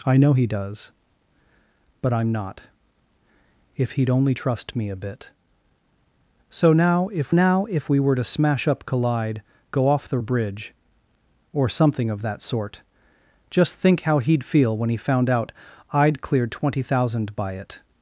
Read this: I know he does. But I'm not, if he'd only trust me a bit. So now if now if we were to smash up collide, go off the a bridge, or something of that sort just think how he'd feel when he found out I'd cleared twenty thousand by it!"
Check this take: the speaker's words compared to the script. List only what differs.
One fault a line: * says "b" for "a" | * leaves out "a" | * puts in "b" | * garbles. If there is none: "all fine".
all fine